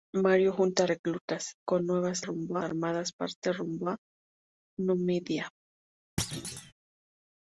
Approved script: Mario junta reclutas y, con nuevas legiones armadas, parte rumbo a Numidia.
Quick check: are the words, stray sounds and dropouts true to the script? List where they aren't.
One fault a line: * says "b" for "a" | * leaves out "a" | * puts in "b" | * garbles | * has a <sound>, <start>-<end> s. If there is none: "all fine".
* leaves out "y"
* says "rumbo" for "legiones"
* has a thud, 6.2-6.7 s